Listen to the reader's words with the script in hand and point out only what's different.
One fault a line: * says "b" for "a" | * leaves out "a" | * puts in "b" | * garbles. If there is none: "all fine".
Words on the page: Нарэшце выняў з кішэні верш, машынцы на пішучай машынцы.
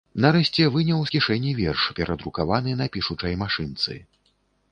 * says "перадрукаваны" for "машынцы"